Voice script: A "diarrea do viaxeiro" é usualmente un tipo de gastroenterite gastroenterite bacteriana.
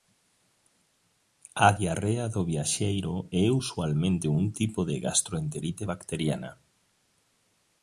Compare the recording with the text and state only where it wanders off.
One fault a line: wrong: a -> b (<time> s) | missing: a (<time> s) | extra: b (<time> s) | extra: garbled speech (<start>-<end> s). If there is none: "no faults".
missing: gastroenterite (5.8 s)